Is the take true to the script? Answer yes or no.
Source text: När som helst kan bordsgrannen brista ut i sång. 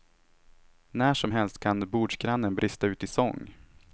yes